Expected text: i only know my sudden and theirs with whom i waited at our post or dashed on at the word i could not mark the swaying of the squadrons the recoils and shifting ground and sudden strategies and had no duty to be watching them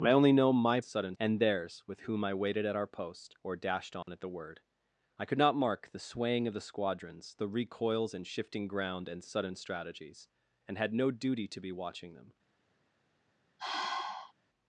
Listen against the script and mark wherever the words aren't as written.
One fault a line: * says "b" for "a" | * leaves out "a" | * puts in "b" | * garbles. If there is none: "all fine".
all fine